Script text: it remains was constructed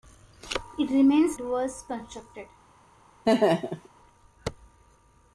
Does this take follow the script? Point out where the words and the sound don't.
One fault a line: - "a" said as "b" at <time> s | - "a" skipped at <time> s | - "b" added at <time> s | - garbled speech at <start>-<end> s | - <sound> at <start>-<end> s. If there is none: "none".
- laugh at 3.2-3.9 s